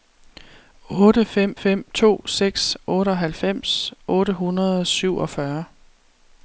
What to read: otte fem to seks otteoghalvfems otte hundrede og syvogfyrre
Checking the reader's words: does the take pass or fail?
fail